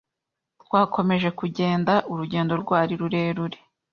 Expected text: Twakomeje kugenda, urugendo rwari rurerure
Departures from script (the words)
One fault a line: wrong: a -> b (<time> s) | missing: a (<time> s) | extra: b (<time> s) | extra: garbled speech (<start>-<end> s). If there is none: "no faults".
no faults